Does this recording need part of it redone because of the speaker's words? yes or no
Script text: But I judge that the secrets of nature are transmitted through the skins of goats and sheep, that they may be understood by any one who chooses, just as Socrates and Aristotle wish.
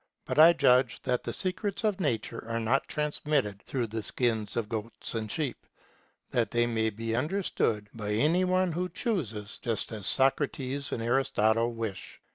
yes